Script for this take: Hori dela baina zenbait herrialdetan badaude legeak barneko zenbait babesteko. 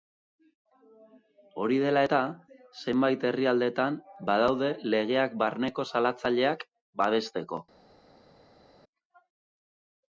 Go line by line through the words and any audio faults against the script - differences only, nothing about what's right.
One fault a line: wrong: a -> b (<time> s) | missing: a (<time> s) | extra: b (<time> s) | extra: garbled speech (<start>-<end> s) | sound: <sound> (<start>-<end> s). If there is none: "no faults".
wrong: baina -> eta (2.0 s)
wrong: zenbait -> salatzaileak (5.9 s)